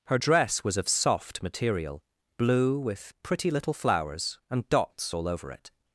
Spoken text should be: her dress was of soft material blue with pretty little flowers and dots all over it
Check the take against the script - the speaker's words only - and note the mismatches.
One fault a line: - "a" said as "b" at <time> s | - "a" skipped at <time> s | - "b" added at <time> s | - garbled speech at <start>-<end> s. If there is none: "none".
none